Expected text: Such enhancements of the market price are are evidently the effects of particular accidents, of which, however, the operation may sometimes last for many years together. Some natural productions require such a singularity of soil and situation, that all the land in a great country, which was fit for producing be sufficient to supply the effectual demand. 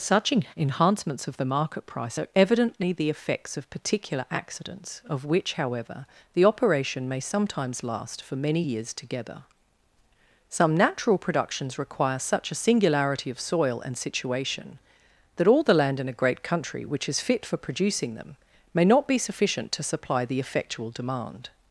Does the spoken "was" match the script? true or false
false